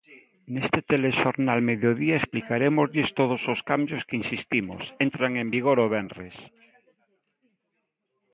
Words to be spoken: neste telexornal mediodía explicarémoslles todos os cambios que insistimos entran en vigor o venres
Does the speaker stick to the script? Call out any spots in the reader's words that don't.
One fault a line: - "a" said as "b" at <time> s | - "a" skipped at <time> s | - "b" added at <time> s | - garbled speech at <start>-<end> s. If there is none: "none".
none